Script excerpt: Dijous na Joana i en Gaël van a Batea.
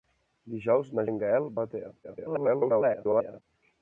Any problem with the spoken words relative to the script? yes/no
yes